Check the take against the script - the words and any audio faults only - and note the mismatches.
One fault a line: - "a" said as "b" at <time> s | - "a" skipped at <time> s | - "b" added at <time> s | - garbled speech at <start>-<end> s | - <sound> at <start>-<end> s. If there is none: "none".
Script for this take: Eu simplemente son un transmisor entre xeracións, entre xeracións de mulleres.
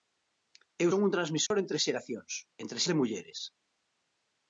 - "simplemente" skipped at 0.9 s
- dropout at 1.5-1.5 s
- "xeracións" skipped at 2.8 s